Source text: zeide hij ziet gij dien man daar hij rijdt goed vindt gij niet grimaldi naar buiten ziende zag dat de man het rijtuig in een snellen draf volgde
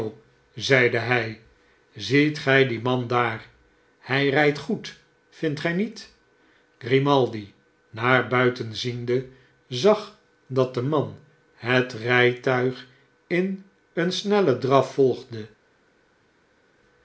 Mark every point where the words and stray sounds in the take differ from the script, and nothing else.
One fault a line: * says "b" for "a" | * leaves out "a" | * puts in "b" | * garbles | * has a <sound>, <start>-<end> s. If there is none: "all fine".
all fine